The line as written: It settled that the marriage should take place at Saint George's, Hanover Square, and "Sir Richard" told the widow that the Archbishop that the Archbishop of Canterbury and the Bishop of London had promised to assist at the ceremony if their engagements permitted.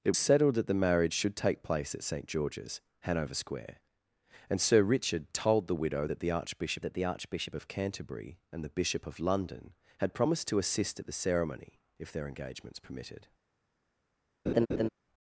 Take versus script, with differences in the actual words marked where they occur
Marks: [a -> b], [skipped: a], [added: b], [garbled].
It settled that the marriage should take place at Saint George's, Hanover Square, and "Sir Richard" told the widow that the Archbishop that the Archbishop of Canterbury and the Bishop of London had promised to assist at the ceremony if their engagements permitted.